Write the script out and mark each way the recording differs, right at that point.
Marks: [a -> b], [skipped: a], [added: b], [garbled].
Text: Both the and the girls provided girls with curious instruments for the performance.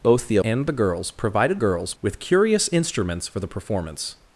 Both the and the girls provided girls with curious instruments for the performance.